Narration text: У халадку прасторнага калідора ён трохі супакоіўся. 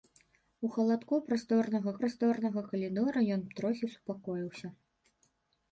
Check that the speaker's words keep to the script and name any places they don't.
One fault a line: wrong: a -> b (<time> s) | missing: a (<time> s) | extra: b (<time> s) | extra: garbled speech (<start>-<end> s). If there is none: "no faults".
extra: прасторнага (2.0 s)